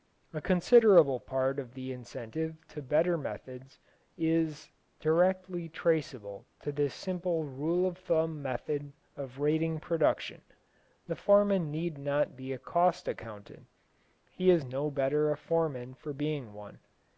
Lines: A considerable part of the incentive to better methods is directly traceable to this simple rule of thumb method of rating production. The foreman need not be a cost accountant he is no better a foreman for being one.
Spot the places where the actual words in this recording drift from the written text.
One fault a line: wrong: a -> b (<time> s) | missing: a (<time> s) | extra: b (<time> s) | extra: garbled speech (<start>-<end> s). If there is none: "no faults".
no faults